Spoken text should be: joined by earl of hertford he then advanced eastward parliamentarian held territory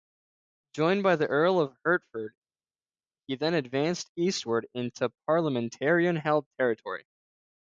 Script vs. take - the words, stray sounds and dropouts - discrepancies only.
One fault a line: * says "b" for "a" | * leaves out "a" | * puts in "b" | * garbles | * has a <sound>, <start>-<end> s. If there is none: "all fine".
* puts in "the"
* puts in "into"